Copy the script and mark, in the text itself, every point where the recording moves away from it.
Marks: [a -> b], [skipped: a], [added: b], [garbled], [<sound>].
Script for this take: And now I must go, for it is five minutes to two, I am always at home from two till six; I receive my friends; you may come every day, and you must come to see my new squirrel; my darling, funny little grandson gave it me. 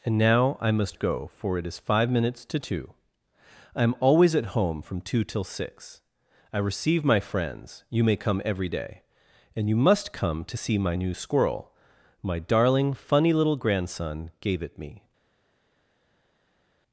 And now I must go, for it is five minutes to two, I am always at home from two till six; I receive my friends; you may come every day, and you must come to see my new squirrel; my darling, funny little grandson gave it me.